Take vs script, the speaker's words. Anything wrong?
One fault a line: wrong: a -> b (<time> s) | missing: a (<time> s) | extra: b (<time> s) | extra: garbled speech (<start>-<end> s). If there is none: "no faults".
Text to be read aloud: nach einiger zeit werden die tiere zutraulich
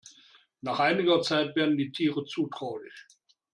no faults